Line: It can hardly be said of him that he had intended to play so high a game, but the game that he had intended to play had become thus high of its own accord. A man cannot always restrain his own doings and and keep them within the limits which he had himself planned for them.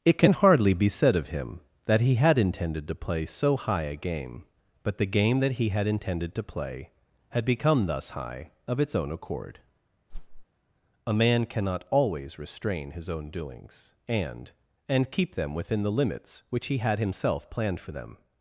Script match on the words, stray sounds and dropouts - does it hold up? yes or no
no